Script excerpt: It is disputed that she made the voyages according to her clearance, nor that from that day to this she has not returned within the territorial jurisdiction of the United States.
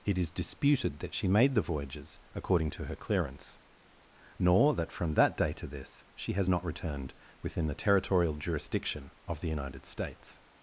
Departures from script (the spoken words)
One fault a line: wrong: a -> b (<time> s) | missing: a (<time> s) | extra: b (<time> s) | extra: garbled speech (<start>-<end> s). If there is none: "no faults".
no faults